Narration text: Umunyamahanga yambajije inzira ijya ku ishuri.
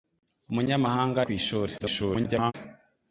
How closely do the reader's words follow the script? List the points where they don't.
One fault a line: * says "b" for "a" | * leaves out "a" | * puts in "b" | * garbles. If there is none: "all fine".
* leaves out "yambajije inzira ijya"
* garbles